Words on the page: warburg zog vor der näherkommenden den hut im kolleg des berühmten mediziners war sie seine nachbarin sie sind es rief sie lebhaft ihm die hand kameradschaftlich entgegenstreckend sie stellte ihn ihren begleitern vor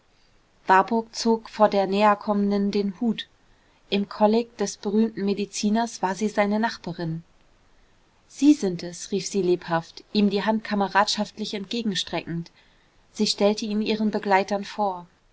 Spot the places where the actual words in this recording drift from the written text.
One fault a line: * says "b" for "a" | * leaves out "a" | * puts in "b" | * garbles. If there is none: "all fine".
all fine